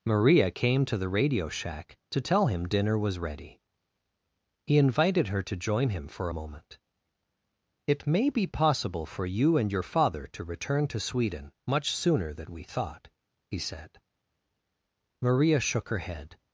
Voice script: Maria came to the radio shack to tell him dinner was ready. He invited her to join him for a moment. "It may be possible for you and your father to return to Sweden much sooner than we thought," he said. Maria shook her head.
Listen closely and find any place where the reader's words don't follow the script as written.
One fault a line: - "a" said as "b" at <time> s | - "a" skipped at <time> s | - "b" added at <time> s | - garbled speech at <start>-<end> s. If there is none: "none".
none